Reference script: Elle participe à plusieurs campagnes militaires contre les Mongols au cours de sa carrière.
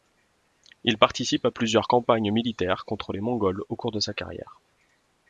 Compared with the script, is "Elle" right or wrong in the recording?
wrong